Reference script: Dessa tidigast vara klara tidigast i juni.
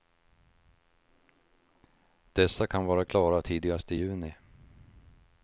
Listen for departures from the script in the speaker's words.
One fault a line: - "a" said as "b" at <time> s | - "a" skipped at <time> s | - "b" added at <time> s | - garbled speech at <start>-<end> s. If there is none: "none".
- "tidigast" said as "kan" at 2.7 s